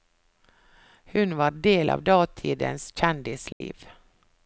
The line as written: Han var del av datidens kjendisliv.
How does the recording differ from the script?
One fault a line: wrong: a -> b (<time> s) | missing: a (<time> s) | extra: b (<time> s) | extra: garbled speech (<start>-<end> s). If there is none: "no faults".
wrong: Han -> Hun (1.1 s)